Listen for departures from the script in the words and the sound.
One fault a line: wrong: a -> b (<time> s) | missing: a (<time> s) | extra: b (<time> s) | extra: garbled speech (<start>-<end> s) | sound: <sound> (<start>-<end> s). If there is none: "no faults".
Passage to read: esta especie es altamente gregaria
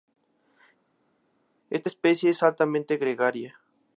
no faults